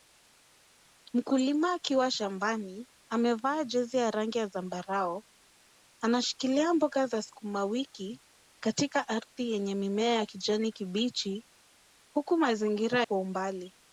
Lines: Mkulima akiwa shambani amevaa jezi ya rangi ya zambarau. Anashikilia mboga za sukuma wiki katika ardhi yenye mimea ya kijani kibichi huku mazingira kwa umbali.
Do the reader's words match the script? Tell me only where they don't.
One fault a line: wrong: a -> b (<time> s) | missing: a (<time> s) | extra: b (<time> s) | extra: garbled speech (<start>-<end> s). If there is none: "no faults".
no faults